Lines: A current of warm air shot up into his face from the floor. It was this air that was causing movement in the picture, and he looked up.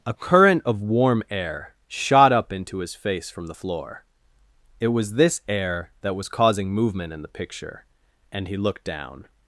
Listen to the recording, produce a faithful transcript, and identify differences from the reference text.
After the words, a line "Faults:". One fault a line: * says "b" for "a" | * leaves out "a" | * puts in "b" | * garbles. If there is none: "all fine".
A current of warm air shot up into his face from the floor. It was this air that was causing movement in the picture, and he looked down.
Faults:
* says "down" for "up"